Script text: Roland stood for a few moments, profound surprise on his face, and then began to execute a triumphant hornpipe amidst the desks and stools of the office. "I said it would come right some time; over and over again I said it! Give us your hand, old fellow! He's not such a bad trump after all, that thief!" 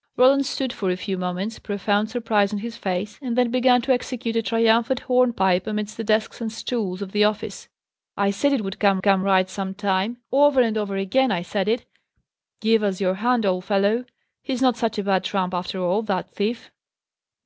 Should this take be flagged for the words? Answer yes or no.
yes